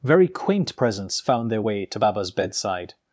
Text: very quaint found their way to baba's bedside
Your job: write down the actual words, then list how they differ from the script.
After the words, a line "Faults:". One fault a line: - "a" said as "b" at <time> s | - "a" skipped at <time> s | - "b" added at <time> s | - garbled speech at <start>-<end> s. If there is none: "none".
very quaint presents found their way to baba's bedside
Faults:
- "presents" added at 0.8 s